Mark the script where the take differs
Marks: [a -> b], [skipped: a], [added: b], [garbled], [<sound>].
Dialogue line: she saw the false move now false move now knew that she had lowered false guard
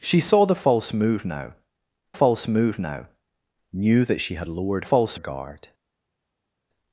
she saw the false move now false move now knew that she had lowered false guard